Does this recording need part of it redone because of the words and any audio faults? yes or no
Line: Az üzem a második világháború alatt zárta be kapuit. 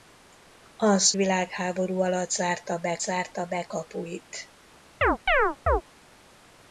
yes